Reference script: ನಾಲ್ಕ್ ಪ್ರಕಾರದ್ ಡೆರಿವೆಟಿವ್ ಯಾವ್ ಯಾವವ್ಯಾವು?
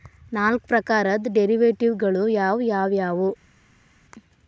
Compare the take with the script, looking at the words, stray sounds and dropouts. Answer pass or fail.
fail